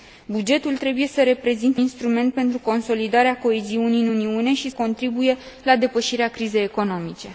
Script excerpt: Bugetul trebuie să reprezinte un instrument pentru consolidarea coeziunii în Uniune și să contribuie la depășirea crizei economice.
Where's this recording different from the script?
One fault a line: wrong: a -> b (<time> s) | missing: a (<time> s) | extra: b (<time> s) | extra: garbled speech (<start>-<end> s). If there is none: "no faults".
missing: un (1.8 s)
missing: să (4.7 s)